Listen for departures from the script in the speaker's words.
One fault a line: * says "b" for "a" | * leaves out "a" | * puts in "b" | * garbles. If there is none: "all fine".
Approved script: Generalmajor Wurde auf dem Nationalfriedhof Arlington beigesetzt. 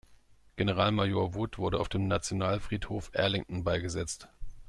* puts in "Wood"